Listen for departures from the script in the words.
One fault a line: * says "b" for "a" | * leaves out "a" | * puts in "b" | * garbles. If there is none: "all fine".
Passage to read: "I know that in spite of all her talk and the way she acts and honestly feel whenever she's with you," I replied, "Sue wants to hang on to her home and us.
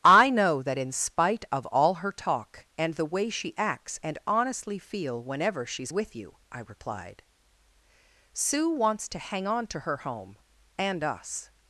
all fine